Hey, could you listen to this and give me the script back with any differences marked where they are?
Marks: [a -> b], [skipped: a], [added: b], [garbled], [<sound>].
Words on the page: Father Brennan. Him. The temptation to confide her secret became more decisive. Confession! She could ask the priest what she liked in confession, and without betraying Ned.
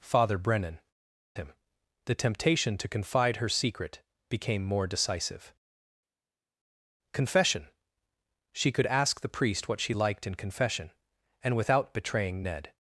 Father Brennan. Him. The temptation to confide her secret became more decisive. Confession! She could ask the priest what she liked in confession, and without betraying Ned.